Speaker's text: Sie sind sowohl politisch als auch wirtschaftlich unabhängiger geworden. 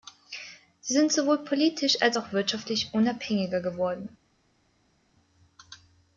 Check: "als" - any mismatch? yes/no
no